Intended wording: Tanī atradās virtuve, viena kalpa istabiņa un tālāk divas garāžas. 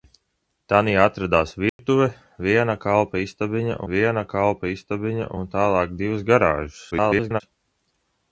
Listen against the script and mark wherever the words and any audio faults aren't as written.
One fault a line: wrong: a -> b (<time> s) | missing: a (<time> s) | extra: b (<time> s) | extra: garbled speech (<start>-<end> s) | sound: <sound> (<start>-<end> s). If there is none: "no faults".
sound: dropout (1.7-1.8 s)
extra: viena kalpa istabiņa (3.9 s)
extra: garbled speech (6.9-7.4 s)